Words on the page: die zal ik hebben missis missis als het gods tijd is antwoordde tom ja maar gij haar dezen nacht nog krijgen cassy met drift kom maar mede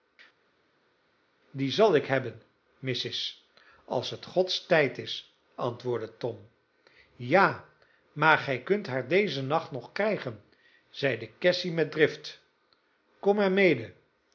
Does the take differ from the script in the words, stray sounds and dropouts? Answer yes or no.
yes